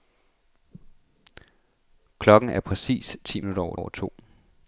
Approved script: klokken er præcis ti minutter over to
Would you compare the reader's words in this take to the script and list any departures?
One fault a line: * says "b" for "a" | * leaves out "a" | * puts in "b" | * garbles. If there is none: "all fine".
* puts in "over"